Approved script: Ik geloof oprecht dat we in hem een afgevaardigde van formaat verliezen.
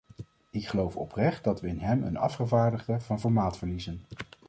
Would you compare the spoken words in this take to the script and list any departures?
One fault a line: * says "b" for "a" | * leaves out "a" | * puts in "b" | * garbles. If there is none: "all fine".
all fine